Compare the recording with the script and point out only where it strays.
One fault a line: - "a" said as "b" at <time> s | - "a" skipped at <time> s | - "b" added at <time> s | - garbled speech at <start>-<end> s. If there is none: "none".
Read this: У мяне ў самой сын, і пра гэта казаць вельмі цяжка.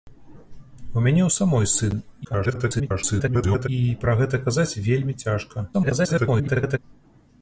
- garbled speech at 2.2-3.7 s
- garbled speech at 5.7-6.8 s